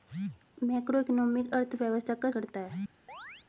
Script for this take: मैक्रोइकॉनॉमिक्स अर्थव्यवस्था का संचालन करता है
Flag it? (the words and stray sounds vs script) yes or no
yes